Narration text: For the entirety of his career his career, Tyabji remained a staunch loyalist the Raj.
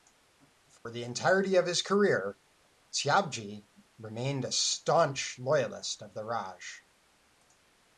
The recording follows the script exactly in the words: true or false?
false